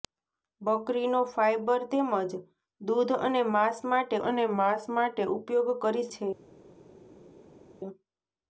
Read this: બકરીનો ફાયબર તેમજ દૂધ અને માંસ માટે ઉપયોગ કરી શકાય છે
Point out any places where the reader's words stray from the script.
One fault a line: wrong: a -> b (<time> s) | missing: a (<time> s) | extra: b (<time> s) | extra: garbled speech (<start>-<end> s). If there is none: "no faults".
extra: અને માંસ માટે (4.2 s)
missing: શકાય (6.1 s)